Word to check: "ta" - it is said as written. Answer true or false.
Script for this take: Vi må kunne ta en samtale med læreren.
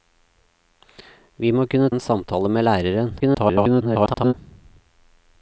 false